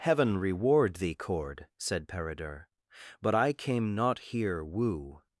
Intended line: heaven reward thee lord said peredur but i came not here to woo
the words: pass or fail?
fail